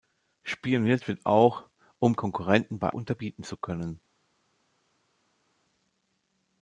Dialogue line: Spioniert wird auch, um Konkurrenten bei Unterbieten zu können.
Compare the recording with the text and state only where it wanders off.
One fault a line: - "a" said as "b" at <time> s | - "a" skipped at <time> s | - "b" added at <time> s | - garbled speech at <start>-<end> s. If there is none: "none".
none